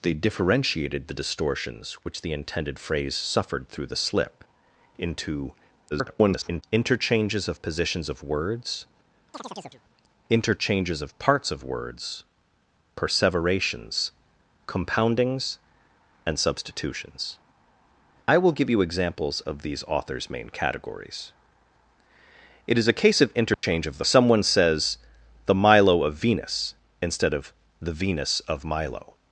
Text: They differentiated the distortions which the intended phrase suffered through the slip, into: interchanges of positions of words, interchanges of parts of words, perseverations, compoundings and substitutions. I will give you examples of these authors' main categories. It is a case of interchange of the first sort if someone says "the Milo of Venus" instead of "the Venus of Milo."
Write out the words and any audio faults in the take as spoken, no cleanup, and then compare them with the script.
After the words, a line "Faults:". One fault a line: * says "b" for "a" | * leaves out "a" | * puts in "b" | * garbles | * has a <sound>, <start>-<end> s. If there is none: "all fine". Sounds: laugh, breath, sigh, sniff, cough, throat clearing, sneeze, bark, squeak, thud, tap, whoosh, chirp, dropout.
They differentiated the distortions which the intended phrase suffered through the slip, into: [garbled] interchanges of positions of words, interchanges of parts of words, perseverations, compoundings and substitutions. I will give you examples of these authors' main categories. It is a case of interchange of the someone says "the Milo of Venus" instead of "the Venus of Milo."
Faults:
* garbles
* has a chirp, 9.3-9.8 s
* has a dropout, 23.5-23.6 s
* leaves out "first sort if"